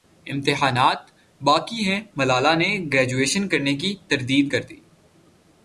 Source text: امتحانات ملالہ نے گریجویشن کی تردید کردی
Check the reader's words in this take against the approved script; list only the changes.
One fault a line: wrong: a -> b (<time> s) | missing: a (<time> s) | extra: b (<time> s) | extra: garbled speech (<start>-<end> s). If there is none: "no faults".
extra: باقی ہیں (1.4 s)
extra: کرنے (3.5 s)